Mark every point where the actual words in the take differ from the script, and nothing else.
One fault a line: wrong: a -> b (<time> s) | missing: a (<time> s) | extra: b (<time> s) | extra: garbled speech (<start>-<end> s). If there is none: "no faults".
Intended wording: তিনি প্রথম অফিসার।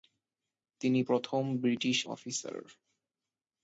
extra: ব্রিটিশ (1.6 s)